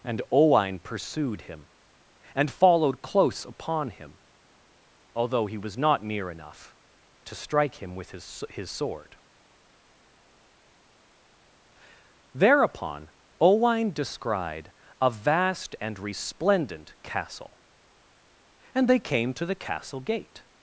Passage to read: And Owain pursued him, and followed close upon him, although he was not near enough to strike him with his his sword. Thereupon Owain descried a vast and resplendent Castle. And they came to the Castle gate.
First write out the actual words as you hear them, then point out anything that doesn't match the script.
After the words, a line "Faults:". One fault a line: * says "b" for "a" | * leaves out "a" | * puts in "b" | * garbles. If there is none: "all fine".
And Owain pursued him, and followed close upon him, although he was not near enough to strike him with his his sword. Thereupon Owain descried a vast and resplendent Castle. And they came to the Castle gate.
Faults:
all fine